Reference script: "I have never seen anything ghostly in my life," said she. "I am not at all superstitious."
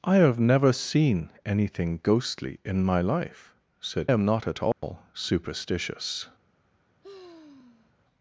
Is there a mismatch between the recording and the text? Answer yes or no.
yes